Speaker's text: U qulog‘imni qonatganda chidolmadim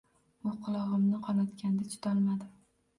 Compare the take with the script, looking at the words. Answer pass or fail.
pass